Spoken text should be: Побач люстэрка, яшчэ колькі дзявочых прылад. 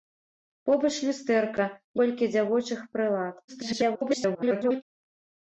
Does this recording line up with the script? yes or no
no